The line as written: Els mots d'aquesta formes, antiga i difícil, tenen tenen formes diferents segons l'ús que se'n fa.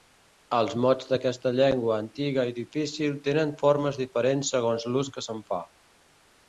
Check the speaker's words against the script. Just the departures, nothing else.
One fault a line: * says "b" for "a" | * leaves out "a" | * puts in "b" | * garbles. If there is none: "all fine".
* says "llengua" for "formes"
* leaves out "tenen"